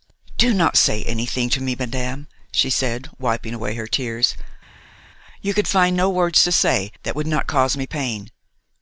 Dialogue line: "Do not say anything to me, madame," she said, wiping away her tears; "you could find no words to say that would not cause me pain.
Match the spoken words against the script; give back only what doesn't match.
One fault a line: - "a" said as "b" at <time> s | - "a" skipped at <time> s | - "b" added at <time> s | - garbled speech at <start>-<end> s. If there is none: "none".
none